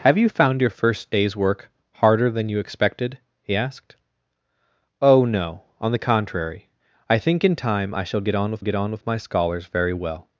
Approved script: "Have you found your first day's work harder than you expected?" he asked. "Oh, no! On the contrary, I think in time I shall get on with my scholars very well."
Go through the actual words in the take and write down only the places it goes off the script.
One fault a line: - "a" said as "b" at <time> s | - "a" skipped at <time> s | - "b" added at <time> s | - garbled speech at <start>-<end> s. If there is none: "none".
- "get on with" added at 8.6 s